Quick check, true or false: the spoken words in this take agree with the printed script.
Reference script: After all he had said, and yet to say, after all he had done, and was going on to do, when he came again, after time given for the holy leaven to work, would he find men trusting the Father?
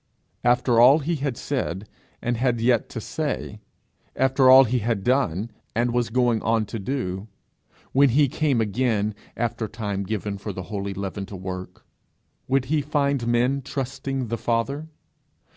false